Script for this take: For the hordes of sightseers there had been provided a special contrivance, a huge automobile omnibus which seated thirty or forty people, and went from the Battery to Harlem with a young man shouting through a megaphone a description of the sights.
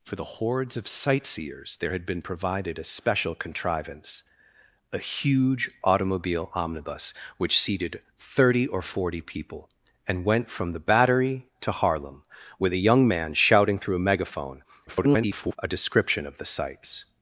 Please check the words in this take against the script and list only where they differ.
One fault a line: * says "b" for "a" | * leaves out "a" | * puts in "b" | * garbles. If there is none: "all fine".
* garbles